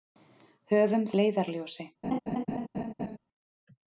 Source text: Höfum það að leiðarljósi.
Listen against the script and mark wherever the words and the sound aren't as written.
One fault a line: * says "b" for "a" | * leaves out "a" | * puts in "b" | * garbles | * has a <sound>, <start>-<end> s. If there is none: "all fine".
* leaves out "það að"
* has a laugh, 2.0-3.2 s